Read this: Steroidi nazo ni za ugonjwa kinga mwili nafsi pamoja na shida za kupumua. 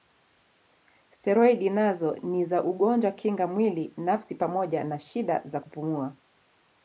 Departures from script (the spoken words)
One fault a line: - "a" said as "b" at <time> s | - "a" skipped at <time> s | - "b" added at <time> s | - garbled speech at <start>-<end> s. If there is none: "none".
none